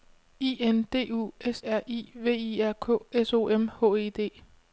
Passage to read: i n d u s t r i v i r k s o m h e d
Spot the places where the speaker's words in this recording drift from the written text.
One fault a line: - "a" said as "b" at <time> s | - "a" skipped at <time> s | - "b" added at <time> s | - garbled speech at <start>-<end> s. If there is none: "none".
- "t" skipped at 1.6 s